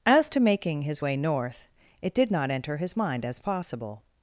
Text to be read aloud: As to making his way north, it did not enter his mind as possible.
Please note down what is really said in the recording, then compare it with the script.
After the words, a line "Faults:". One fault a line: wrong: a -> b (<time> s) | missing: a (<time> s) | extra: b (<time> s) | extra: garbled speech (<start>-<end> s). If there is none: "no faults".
As to making his way north, it did not enter his mind as possible.
Faults:
no faults